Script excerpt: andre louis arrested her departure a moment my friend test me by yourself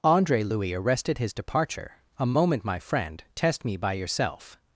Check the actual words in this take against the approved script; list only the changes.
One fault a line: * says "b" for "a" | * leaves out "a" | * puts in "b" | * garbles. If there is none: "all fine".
* says "his" for "her"